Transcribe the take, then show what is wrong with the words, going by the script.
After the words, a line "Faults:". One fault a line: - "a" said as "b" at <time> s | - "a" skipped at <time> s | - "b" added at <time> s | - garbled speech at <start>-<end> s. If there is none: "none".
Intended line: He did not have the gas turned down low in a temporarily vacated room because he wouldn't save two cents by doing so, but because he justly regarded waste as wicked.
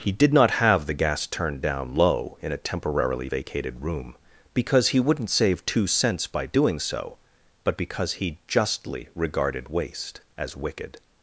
He did not have the gas turned down low in a temporarily vacated room because he wouldn't save two cents by doing so, but because he justly regarded waste as wicked.
Faults:
none